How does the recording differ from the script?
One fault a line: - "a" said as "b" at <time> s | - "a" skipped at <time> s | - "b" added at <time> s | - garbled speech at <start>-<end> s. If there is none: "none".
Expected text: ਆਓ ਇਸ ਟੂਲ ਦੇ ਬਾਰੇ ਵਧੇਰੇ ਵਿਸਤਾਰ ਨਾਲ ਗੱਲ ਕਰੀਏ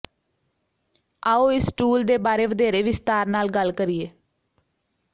none